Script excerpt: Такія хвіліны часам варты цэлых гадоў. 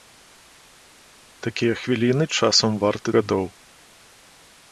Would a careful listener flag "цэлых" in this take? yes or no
yes